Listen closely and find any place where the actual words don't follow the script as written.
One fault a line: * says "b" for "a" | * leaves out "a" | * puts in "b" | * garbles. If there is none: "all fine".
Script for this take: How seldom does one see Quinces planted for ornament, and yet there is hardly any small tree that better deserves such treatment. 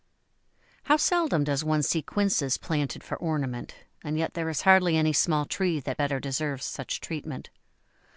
all fine